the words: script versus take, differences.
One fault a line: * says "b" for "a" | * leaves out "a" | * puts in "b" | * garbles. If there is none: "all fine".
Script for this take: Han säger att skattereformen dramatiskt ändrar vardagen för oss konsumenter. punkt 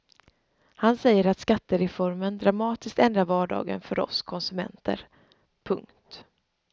all fine